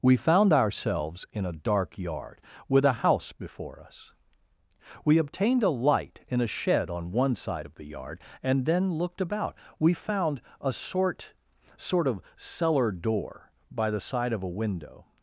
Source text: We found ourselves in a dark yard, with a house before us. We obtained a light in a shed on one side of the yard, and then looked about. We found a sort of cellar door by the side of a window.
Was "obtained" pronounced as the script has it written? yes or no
yes